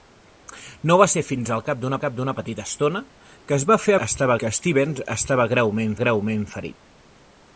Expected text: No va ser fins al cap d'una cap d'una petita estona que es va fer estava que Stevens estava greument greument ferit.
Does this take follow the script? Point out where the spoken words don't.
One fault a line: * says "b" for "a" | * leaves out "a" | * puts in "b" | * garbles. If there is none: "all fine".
all fine